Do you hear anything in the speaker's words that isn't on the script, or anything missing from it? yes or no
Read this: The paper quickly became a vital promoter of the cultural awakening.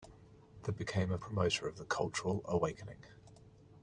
yes